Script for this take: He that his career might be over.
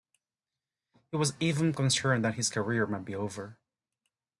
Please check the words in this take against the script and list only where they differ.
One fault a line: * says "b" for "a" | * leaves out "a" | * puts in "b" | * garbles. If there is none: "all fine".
* puts in "was even concerned"